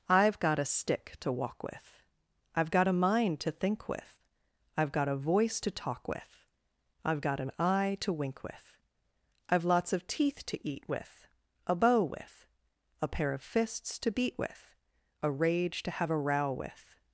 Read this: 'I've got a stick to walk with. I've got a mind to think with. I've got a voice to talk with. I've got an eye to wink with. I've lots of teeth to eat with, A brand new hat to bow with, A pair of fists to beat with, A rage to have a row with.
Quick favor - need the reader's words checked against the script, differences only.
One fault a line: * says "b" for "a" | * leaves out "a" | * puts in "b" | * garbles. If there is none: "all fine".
* leaves out "brand new hat to"